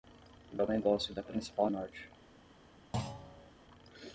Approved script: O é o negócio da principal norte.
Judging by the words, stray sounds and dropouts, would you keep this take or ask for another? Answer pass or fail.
fail